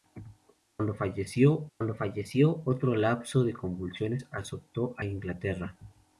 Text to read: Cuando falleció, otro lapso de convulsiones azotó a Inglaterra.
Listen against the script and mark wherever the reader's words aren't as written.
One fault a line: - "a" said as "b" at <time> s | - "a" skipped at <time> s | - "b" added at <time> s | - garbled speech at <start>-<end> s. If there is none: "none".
- "cuando falleció" added at 1.8 s